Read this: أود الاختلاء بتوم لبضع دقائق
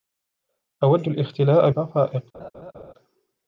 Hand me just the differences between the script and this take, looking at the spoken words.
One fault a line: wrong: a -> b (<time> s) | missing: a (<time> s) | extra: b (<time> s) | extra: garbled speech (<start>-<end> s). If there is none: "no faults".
missing: بتوم لبضع (1.7 s)